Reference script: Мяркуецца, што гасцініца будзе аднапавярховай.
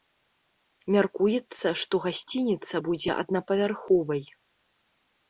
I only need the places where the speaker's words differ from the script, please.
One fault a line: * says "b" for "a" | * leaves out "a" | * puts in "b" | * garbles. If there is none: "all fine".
all fine